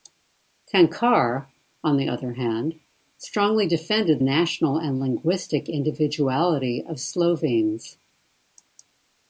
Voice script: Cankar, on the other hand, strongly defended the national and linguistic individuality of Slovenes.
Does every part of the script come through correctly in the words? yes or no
no